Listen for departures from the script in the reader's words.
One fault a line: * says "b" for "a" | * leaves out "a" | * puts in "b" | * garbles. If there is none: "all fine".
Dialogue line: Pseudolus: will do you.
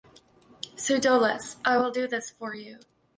* puts in "I"
* puts in "this for"